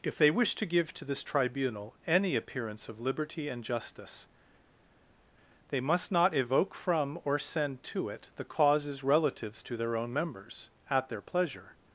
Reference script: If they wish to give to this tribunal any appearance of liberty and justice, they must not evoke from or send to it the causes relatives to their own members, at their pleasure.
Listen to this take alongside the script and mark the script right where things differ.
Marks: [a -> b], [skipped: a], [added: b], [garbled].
If they wish to give to this tribunal any appearance of liberty and justice, they must not evoke from or send to it the causes relatives to their own members, at their pleasure.